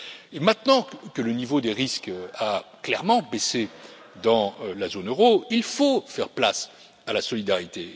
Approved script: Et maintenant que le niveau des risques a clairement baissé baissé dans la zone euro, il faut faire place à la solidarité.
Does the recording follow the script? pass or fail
fail